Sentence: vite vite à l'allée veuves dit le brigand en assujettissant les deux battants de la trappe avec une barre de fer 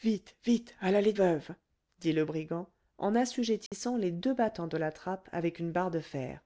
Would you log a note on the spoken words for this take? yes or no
no